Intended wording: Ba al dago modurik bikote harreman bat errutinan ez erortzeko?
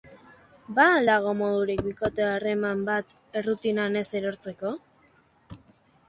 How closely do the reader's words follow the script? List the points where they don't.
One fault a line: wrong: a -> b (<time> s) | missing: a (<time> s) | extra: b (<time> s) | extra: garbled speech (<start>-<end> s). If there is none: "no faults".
no faults